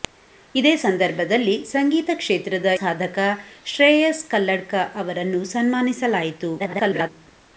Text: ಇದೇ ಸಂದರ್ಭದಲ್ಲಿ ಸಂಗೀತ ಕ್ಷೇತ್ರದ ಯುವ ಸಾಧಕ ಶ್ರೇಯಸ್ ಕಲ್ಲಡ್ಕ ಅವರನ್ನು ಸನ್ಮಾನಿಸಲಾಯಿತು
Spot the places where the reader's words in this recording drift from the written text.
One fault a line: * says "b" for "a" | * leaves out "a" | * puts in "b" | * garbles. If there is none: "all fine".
* leaves out "ಯುವ"
* garbles